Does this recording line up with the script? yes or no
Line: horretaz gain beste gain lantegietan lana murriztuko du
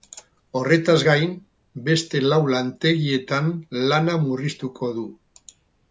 no